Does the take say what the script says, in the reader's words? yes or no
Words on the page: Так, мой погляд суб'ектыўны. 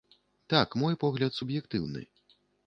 yes